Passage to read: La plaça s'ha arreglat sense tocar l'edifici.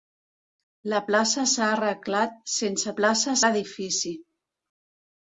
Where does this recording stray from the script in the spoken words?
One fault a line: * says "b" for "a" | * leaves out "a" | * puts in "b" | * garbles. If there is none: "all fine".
* says "plaça" for "tocar"